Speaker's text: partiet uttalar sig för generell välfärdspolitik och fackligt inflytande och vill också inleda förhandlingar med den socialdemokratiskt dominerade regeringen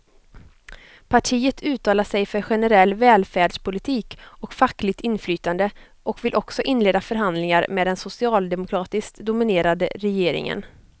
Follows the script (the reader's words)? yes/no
yes